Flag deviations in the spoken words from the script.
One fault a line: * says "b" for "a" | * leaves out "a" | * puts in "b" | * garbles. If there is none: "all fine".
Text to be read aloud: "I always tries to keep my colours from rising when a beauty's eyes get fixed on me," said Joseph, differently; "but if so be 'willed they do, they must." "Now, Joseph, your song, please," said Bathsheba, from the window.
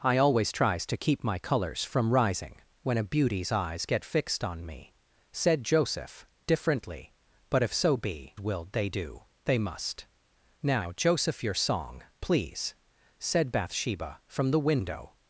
all fine